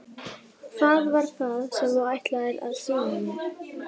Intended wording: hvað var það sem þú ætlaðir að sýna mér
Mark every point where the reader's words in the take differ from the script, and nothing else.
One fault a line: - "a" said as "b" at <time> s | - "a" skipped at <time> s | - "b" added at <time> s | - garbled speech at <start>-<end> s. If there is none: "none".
none